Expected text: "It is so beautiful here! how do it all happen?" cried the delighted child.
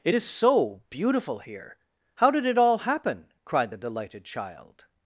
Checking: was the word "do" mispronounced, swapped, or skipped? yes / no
yes